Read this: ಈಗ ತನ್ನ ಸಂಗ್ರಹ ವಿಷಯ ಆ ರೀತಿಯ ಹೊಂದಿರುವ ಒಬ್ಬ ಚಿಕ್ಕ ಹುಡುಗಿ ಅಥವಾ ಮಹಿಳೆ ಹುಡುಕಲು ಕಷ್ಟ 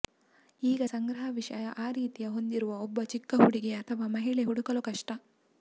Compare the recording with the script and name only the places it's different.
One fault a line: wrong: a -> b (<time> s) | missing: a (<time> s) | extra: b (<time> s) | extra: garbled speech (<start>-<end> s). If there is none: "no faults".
missing: ತನ್ನ (0.8 s)